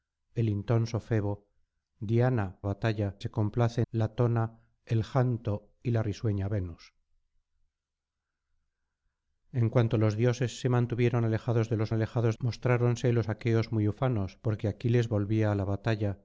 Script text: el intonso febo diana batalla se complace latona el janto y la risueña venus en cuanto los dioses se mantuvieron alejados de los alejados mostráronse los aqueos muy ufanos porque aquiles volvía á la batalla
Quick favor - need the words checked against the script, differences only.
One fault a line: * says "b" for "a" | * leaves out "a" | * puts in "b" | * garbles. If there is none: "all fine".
all fine